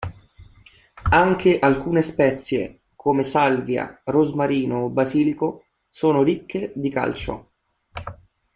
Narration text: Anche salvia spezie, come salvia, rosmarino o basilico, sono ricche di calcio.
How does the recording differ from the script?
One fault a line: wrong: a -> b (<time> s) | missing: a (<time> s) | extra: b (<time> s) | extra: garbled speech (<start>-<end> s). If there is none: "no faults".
wrong: salvia -> alcune (1.6 s)